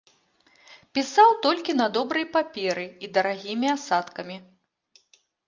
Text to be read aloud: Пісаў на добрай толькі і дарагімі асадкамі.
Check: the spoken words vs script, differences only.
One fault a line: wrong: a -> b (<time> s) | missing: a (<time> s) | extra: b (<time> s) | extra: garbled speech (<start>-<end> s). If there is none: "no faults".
extra: толькі (1.4 s)
wrong: толькі -> паперы (2.4 s)